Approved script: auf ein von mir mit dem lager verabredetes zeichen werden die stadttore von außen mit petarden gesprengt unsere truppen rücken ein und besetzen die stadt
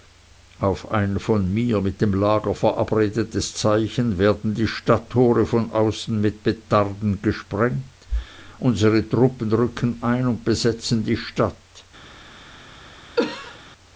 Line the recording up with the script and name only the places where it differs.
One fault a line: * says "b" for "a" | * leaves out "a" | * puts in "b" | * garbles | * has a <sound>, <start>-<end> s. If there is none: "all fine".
* has a cough, 13.2-13.6 s